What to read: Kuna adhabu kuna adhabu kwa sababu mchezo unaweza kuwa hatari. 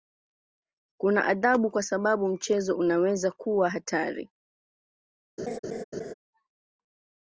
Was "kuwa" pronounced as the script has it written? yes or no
yes